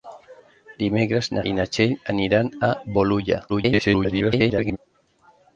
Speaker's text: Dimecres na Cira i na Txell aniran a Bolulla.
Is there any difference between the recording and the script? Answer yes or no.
yes